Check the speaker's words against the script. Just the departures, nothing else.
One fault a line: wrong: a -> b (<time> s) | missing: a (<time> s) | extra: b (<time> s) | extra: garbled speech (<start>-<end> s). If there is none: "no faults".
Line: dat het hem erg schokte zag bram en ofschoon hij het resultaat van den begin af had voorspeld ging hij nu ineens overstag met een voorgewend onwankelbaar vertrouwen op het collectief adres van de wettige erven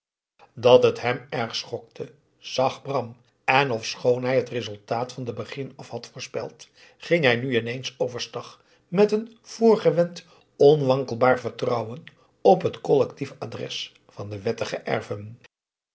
no faults